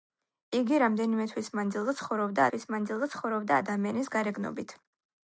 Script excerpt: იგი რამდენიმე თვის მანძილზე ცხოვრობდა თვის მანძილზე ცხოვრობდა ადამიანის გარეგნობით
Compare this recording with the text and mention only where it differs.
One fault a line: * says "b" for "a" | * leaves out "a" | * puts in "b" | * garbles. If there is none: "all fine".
all fine